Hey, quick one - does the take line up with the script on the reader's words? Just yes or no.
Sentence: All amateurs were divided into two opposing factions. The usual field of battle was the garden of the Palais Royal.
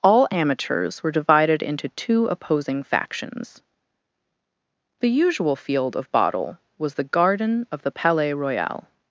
no